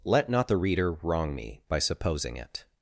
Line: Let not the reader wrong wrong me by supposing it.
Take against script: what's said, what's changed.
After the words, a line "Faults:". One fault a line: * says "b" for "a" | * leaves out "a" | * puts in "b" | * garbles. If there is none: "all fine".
Let not the reader wrong me by supposing it.
Faults:
* leaves out "wrong"